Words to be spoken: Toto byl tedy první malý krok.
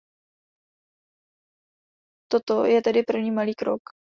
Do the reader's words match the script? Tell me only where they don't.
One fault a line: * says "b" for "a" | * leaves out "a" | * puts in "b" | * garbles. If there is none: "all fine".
* says "je" for "byl"